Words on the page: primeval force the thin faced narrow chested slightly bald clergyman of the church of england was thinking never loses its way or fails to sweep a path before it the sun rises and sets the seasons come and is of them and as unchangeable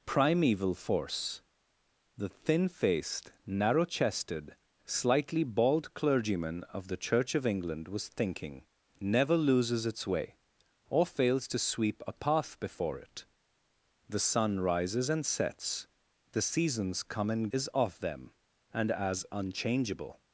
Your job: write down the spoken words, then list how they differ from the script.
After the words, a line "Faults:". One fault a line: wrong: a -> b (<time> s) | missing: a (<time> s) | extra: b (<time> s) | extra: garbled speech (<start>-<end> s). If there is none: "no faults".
primeval force the thin faced narrow chested slightly bald clergyman of the church of england was thinking never loses its way or fails to sweep a path before it the sun rises and sets the seasons come and is of them and as unchangeable
Faults:
no faults